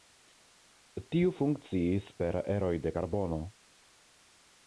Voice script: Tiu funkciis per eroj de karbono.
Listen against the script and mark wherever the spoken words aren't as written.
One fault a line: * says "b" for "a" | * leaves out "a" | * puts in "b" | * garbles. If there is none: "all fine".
all fine